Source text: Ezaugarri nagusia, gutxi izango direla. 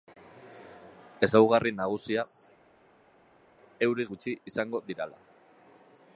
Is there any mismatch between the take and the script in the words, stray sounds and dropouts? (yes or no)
yes